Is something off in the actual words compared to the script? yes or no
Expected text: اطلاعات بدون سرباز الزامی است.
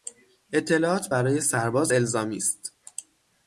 yes